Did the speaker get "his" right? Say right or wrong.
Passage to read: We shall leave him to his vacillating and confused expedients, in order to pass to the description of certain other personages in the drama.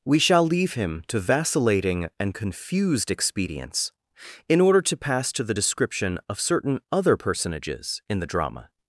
wrong